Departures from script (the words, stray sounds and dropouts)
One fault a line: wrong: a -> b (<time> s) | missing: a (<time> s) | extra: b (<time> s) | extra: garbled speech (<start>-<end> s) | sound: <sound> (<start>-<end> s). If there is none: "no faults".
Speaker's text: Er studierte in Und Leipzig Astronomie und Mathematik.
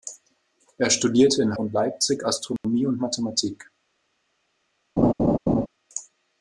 sound: dropout (2.6-2.6 s)
sound: laugh (5.0-5.7 s)